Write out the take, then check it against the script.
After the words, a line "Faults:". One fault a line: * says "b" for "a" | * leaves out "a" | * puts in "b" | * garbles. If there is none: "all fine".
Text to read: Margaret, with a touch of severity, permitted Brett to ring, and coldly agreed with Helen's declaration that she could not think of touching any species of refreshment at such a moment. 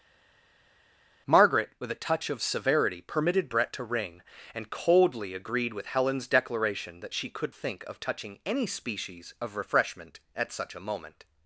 Margaret, with a touch of severity, permitted Brett to ring, and coldly agreed with Helen's declaration that she could think of touching any species of refreshment at such a moment.
Faults:
* leaves out "not"